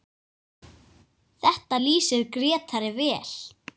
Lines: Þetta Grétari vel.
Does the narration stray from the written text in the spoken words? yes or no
yes